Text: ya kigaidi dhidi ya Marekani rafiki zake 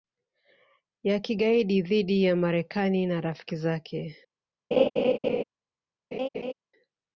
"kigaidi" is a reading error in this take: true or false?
false